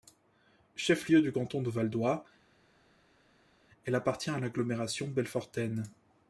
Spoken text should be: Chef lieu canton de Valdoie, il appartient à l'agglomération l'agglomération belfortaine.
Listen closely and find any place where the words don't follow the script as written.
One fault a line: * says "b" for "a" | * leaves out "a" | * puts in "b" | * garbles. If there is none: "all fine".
* puts in "du"
* says "elle" for "il"
* leaves out "l'agglomération"